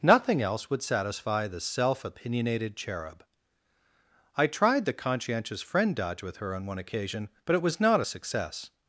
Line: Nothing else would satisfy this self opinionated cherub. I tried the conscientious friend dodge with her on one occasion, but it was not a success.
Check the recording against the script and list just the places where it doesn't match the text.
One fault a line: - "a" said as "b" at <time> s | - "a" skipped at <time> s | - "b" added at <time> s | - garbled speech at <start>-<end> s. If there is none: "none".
- "this" said as "the" at 1.5 s